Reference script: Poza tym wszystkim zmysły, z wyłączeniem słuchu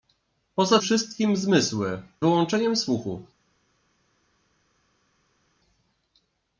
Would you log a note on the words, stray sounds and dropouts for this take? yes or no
yes